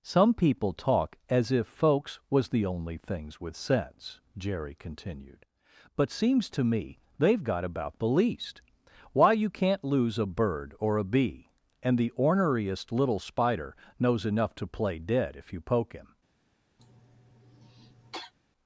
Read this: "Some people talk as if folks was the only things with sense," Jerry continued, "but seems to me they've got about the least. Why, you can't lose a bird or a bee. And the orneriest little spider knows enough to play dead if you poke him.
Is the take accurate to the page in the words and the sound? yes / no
no